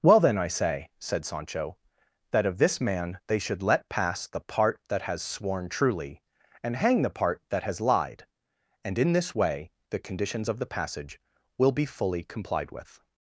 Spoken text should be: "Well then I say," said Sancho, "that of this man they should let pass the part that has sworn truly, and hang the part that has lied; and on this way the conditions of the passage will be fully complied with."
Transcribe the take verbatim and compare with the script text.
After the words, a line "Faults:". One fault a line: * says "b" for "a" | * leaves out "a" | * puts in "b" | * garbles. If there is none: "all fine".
"Well then I say," said Sancho, "that of this man they should let pass the part that has sworn truly, and hang the part that has lied; and in this way the conditions of the passage will be fully complied with."
Faults:
* says "in" for "on"